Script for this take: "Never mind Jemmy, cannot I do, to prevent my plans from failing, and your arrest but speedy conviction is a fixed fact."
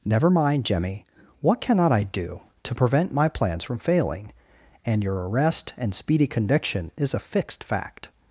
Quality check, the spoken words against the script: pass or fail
fail